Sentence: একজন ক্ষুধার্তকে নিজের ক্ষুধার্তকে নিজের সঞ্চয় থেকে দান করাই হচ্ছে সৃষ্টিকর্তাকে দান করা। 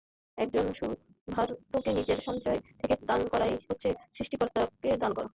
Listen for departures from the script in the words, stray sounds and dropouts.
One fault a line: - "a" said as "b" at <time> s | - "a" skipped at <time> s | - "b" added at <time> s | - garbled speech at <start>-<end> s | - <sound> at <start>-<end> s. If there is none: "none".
- "ক্ষুধার্তকে নিজের" skipped at 2.2 s